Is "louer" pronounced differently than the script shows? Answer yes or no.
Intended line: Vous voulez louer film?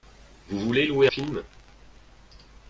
no